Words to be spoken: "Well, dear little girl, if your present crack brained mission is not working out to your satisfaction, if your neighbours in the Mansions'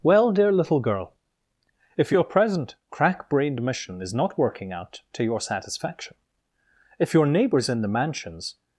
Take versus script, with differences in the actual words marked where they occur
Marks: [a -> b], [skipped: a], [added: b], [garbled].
"Well, dear little girl, if your present crack brained mission is not working out to your satisfaction, if your neighbours in the Mansions'